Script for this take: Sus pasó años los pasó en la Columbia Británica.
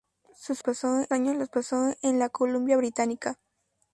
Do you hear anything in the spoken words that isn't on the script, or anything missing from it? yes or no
no